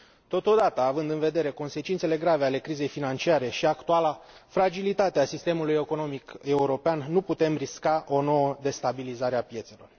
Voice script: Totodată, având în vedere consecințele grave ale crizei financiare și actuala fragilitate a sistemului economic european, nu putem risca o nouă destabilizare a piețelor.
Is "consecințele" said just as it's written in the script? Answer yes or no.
yes